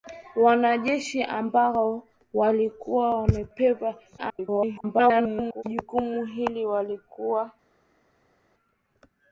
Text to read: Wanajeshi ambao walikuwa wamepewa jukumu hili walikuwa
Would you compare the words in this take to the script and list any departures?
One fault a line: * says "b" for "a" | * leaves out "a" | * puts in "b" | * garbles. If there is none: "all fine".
* garbles